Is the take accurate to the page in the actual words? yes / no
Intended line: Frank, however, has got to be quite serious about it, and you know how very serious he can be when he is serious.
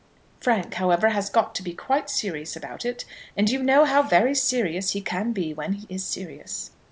yes